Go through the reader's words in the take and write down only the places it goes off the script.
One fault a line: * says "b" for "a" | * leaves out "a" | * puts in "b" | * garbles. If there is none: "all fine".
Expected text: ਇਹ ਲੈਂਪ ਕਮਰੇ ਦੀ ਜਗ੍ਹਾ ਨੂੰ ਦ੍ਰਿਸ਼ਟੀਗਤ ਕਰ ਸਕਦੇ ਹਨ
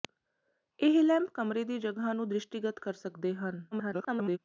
* garbles